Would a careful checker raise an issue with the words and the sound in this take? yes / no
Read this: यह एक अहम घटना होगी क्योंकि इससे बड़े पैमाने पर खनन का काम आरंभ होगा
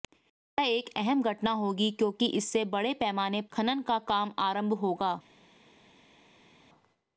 yes